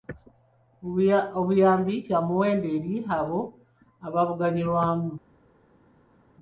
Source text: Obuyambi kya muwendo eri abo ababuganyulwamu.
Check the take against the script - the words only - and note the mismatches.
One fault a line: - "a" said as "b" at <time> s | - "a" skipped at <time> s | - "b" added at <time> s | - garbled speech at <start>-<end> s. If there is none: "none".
none